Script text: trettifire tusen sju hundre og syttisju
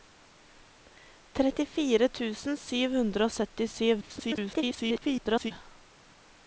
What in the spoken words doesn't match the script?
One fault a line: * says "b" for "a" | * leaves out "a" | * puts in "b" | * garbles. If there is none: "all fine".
* garbles